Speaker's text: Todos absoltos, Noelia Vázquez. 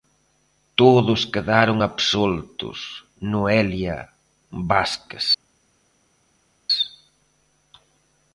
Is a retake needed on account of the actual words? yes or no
yes